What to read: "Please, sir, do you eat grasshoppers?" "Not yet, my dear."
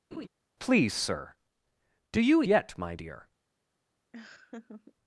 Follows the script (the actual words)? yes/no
no